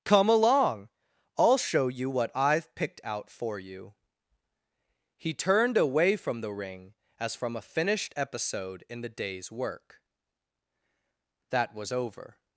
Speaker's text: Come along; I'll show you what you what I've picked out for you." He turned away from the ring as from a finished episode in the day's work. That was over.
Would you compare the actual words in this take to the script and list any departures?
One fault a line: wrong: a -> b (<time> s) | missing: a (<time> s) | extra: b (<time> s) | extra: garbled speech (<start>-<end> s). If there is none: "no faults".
missing: you what (2.3 s)